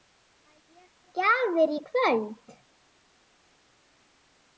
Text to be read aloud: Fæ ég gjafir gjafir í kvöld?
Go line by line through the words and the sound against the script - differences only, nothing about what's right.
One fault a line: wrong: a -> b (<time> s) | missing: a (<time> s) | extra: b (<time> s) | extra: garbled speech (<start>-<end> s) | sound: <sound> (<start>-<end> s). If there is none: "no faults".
missing: gjafir (1.8 s)